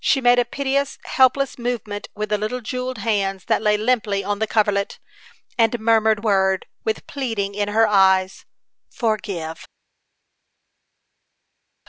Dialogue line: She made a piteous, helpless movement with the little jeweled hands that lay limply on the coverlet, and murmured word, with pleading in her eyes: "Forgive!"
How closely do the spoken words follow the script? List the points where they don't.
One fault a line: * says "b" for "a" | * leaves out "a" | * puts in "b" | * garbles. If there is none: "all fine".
all fine